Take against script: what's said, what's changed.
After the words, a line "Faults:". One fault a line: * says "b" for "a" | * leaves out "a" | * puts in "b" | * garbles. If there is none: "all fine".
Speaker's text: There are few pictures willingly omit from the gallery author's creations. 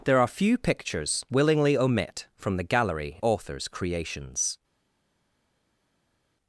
There are few pictures willingly omit from the gallery author's creations.
Faults:
all fine